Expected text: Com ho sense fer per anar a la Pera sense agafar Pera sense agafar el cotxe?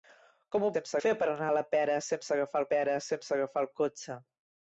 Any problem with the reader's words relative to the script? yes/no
no